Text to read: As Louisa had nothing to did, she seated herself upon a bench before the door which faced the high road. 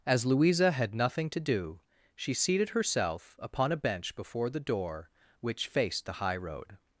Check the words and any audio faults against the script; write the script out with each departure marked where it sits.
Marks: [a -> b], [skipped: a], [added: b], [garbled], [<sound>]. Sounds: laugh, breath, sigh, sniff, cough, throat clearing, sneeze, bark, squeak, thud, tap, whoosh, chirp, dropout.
As Louisa had nothing to [did, -> do] she seated herself upon a bench before the door which faced the high road.